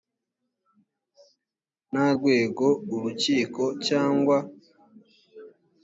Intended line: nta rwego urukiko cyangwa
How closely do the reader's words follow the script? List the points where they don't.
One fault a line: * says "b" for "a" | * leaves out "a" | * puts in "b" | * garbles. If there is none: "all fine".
all fine